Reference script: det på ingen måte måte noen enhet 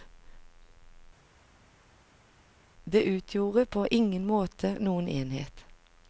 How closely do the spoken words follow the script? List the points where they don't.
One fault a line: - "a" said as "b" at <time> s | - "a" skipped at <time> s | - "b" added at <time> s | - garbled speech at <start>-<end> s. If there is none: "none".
- "utgjorde" added at 3.0 s
- "måte" skipped at 4.7 s